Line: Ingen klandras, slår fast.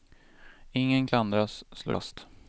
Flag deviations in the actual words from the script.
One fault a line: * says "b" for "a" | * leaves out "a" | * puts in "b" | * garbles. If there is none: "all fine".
all fine